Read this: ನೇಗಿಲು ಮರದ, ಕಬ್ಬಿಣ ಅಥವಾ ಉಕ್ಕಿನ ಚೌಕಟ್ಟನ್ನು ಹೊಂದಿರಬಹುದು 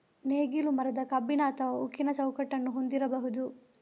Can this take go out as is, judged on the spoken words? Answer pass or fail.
pass